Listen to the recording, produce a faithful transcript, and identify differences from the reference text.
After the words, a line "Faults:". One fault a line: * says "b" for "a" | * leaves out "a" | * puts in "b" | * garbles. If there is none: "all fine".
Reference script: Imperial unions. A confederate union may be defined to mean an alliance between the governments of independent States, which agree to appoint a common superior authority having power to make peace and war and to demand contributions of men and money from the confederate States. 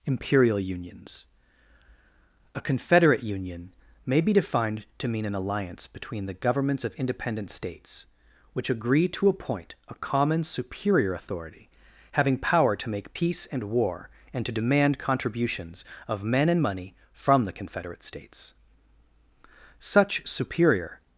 Imperial unions. A confederate union may be defined to mean an alliance between the governments of independent States, which agree to appoint a common superior authority having power to make peace and war and to demand contributions of men and money from the confederate States. Such superior
Faults:
* puts in "Such superior"